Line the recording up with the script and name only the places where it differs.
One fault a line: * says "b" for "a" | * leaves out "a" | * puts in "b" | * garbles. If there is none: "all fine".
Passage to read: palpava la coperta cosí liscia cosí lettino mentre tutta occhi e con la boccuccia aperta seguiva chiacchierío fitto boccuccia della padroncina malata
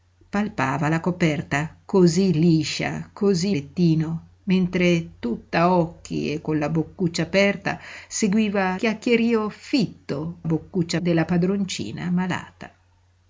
all fine